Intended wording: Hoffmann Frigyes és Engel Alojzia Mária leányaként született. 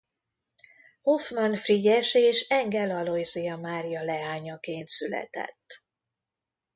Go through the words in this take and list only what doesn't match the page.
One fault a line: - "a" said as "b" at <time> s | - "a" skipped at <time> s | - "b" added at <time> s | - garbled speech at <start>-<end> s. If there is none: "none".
none